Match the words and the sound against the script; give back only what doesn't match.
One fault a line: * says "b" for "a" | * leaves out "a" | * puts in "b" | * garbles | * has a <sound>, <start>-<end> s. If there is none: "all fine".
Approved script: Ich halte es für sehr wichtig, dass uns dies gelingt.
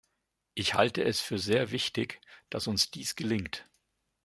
all fine